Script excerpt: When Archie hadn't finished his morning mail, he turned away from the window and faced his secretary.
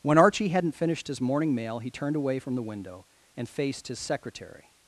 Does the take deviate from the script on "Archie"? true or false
false